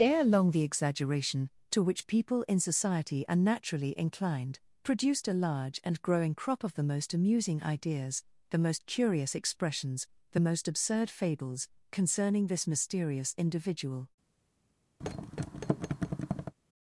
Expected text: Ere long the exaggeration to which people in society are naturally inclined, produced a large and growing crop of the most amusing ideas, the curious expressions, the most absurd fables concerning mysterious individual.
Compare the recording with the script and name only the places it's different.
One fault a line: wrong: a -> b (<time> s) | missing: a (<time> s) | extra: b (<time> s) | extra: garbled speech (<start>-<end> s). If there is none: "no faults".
extra: most (8.6 s)
extra: this (12.4 s)